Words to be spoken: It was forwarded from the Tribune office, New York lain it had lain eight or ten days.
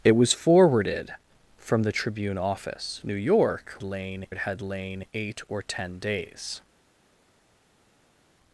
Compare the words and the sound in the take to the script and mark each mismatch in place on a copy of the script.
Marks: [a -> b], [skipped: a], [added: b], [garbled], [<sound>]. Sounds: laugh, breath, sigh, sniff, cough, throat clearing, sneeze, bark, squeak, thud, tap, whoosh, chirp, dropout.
It was forwarded from the Tribune office, New York lain it had lain eight or ten days.